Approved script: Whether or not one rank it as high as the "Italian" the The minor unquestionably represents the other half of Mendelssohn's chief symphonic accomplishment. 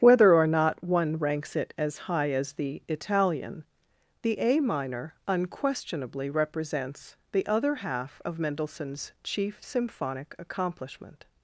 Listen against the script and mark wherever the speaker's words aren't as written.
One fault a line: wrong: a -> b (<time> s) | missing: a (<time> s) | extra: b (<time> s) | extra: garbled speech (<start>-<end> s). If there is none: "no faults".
wrong: rank -> ranks (1.2 s)
wrong: The -> A (4.4 s)